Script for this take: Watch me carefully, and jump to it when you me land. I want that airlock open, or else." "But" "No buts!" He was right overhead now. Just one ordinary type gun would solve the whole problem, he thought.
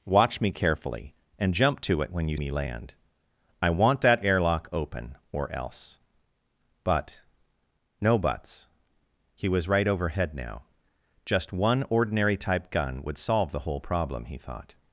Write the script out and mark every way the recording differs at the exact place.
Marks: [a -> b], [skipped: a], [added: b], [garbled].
Watch me carefully, and jump to it when you me land. I want that airlock open, or else." "But" "No buts!" He was right overhead now. Just one ordinary type gun would solve the whole problem, he thought.